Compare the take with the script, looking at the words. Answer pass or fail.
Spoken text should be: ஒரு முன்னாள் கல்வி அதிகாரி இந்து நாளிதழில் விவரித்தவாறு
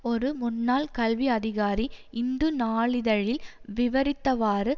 pass